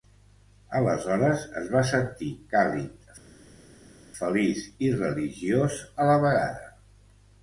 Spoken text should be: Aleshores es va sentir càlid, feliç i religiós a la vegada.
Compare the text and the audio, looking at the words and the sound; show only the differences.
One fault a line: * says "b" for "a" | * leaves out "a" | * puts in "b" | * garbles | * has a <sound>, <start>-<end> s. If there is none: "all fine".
all fine